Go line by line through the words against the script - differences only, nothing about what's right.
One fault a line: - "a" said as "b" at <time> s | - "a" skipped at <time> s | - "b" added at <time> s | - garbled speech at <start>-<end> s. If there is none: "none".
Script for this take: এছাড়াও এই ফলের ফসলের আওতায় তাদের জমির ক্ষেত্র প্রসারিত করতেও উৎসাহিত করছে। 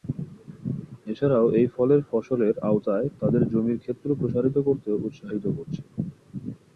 none